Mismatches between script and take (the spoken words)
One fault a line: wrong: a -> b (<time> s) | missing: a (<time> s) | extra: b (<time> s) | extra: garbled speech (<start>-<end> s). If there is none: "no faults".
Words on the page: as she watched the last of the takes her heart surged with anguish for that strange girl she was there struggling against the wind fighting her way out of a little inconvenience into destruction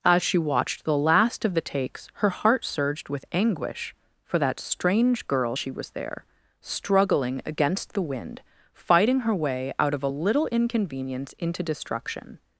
no faults